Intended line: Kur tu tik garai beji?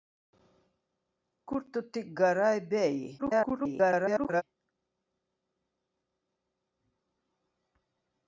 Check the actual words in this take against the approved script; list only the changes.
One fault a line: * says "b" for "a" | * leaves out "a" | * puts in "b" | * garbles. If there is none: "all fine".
* garbles